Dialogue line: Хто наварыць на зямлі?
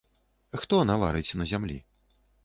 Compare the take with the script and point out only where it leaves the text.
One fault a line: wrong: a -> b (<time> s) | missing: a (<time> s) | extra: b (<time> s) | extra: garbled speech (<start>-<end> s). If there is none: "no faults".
no faults